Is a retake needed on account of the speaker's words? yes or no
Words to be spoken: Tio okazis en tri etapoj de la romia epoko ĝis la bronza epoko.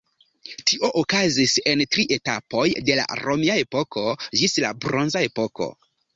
no